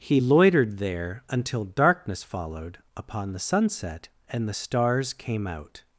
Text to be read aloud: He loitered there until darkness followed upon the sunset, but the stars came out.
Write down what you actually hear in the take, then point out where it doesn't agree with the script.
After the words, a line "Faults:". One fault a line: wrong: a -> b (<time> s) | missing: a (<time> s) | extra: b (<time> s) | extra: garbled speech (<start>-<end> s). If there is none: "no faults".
He loitered there until darkness followed upon the sunset, and the stars came out.
Faults:
wrong: but -> and (4.3 s)